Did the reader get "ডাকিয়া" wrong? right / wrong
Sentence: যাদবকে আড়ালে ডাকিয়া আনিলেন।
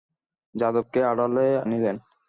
wrong